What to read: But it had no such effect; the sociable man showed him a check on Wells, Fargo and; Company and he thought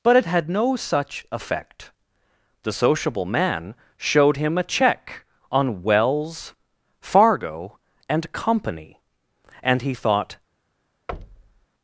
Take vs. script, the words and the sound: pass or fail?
fail